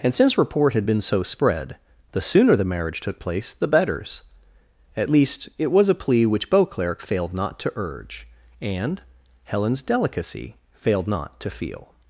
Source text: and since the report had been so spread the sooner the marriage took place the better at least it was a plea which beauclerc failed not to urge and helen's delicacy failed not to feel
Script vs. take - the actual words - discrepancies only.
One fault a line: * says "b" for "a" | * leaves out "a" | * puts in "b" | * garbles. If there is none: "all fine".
* leaves out "the"
* says "betters" for "better"